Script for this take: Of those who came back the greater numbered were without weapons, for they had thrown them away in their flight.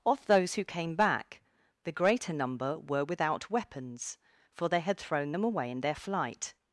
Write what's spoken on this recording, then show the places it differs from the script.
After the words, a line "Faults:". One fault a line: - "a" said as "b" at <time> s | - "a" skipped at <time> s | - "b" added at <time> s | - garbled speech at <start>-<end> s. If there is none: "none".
Of those who came back the greater number were without weapons, for they had thrown them away in their flight.
Faults:
- "numbered" said as "number" at 2.3 s